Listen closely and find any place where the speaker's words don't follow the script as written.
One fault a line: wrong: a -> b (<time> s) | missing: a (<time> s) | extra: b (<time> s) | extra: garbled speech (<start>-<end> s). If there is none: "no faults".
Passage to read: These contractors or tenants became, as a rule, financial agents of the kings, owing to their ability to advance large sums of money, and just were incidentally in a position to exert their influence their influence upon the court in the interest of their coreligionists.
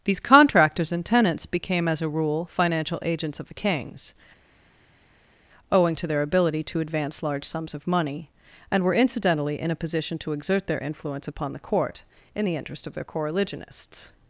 wrong: or -> and (0.9 s)
missing: just (8.8 s)
missing: their influence (11.3 s)